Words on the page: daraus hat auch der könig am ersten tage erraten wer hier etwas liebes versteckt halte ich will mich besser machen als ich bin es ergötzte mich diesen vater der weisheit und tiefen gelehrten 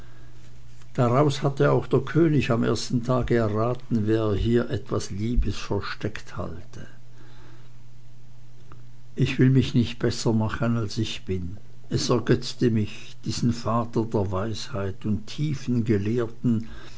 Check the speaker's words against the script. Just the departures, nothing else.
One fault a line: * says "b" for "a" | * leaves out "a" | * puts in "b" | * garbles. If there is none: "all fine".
* says "hatte" for "hat"
* puts in "nicht"